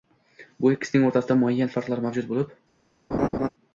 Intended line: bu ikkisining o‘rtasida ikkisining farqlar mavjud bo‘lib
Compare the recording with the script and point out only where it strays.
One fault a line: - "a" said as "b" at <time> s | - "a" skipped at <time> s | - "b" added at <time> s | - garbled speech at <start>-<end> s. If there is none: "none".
- "ikkisining" said as "muayyan" at 1.4 s